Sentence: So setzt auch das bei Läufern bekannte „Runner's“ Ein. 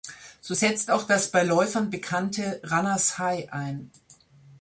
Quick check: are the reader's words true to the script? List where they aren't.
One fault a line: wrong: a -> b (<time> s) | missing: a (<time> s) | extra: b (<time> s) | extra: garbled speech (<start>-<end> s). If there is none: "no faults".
extra: High (3.2 s)